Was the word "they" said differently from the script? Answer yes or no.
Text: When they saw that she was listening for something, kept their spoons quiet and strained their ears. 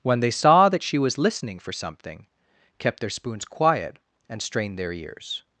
no